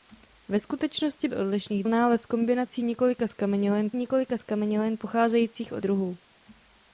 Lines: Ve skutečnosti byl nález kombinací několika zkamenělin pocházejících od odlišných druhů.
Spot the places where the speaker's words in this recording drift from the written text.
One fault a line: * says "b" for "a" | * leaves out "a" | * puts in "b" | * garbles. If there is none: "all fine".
* says "odlišných" for "byl"
* puts in "několika zkamenělin"
* leaves out "odlišných"